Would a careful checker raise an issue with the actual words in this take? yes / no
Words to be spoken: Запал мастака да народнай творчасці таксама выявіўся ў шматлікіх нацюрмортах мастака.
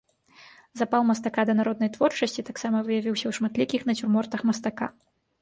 no